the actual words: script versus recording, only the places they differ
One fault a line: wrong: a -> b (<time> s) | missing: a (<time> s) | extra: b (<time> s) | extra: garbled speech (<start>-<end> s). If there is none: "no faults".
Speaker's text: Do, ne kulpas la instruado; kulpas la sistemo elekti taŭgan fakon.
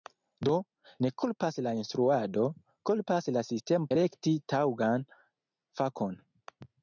no faults